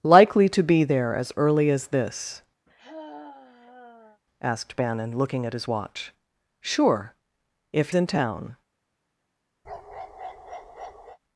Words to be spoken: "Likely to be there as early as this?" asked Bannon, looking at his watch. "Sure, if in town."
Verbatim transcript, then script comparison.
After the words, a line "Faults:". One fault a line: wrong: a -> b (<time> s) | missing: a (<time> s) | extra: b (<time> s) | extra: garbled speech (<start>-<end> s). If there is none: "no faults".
"Likely to be there as early as this?" asked Bannon, looking at his watch. "Sure, if in town."
Faults:
no faults